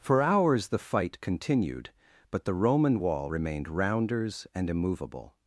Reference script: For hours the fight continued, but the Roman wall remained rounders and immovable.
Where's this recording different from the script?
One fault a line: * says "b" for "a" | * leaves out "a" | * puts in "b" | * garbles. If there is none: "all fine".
all fine